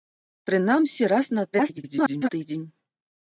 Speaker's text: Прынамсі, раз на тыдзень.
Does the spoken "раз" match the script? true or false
true